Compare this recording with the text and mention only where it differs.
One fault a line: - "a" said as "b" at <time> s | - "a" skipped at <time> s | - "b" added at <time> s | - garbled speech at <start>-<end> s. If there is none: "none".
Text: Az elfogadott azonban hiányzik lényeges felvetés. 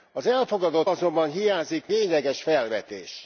none